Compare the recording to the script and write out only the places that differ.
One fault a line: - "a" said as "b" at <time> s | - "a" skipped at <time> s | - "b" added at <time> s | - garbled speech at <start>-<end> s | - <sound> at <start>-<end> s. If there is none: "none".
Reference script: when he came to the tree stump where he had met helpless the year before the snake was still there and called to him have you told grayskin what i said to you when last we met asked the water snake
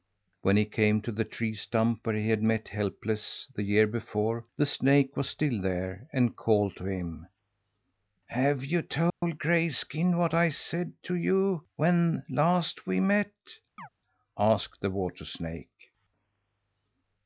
- dropout at 9.1-9.2 s
- chirp at 13.8-13.9 s